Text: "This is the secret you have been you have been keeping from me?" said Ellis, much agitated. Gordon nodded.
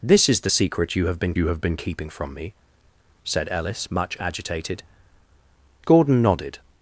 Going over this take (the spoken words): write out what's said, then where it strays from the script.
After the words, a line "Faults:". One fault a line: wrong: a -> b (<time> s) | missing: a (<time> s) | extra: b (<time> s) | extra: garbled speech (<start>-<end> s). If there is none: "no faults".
"This is the secret you have been you have been keeping from me?" said Ellis, much agitated. Gordon nodded.
Faults:
no faults